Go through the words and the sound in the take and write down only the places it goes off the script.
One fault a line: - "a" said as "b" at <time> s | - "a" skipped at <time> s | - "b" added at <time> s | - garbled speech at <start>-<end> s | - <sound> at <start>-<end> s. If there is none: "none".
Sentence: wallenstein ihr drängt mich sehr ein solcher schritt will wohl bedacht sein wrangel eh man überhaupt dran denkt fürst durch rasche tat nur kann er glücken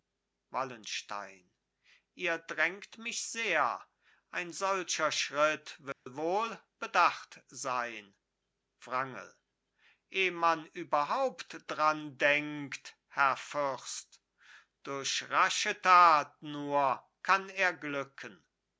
- dropout at 5.9-6.1 s
- "herr" added at 13.1 s